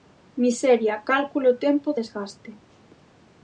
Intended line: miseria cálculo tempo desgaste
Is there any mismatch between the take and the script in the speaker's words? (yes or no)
no